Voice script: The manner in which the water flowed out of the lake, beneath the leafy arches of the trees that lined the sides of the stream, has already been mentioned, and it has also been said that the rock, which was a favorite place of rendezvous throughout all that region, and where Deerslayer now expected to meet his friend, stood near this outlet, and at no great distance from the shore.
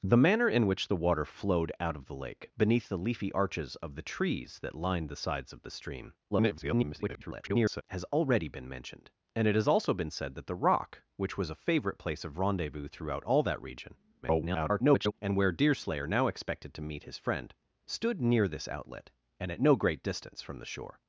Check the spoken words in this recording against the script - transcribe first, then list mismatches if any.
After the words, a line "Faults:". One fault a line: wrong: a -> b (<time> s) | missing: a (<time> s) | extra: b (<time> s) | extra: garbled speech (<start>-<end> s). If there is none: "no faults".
The manner in which the water flowed out of the lake, beneath the leafy arches of the trees that lined the sides of the stream, [garbled] has already been mentioned, and it has also been said that the rock, which was a favorite place of rendezvous throughout all that region, [garbled] and where Deerslayer now expected to meet his friend, stood near this outlet, and at no great distance from the shore.
Faults:
extra: garbled speech (6.3-7.8 s)
extra: garbled speech (14.2-15.1 s)